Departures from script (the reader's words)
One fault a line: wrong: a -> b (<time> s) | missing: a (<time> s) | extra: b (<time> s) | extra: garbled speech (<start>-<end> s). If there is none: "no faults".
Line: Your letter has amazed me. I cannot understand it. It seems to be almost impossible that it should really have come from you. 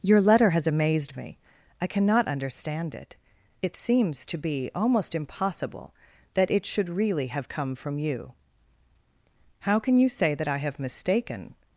extra: How can you say that I have mistaken (9.6 s)